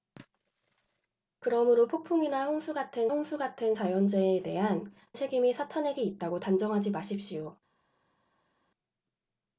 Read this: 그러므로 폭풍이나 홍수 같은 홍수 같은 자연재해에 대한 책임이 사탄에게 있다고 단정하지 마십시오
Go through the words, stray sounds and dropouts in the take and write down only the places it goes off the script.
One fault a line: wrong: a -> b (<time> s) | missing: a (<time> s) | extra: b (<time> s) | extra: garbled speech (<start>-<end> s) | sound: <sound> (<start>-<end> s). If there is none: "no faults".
no faults